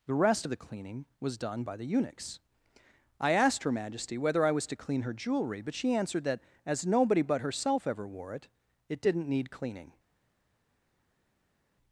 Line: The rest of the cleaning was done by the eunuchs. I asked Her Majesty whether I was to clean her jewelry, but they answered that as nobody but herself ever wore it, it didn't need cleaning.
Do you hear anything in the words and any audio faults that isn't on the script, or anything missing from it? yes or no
yes